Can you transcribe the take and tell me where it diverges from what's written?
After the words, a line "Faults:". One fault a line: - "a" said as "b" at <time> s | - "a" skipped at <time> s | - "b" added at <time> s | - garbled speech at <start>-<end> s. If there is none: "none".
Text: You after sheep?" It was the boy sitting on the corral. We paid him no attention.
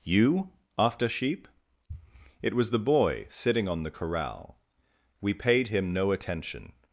You after sheep?" It was the boy sitting on the corral. We paid him no attention.
Faults:
none